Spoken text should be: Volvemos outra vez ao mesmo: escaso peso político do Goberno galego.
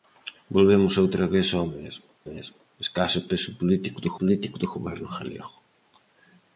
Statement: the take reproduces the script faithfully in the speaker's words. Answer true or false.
false